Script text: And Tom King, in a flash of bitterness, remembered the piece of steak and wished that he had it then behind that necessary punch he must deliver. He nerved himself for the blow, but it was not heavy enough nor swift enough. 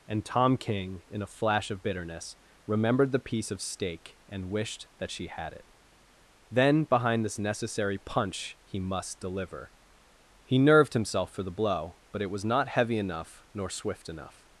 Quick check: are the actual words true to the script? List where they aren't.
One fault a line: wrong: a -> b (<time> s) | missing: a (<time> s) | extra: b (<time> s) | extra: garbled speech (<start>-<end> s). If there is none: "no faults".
wrong: he -> she (5.1 s)
wrong: that -> this (7.2 s)